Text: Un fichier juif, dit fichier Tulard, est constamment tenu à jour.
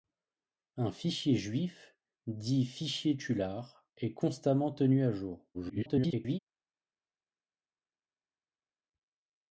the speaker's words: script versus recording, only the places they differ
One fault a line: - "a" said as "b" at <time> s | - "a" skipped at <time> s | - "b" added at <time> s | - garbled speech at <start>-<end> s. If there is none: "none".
- garbled speech at 5.5-6.4 s